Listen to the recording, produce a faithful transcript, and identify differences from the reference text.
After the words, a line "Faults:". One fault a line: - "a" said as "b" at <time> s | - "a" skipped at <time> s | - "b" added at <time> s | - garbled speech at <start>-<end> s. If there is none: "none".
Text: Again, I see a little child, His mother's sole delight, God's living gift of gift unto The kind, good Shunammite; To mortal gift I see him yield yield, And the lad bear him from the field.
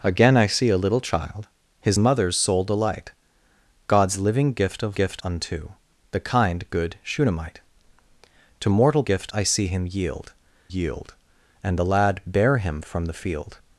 Again, I see a little child, His mother's sole delight, God's living gift of gift unto The kind, good Shunammite; To mortal gift I see him yield yield, And the lad bear him from the field.
Faults:
none